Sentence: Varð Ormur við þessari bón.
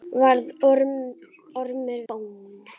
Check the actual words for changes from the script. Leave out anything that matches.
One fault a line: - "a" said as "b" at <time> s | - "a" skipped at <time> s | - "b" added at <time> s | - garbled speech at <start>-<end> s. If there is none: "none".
- "við þessari" skipped at 2.0 s